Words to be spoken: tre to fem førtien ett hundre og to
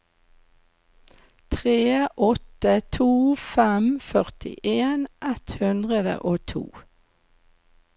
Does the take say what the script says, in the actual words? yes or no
no